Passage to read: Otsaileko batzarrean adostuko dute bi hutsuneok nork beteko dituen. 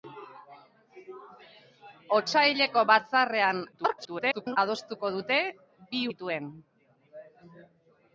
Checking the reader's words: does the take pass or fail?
fail